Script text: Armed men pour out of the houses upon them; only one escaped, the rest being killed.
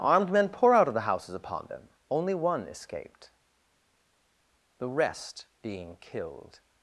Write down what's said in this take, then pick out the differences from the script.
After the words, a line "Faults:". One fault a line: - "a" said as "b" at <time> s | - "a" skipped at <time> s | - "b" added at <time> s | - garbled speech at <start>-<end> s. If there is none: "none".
Armed men pour out of the houses upon them; only one escaped, the rest being killed.
Faults:
none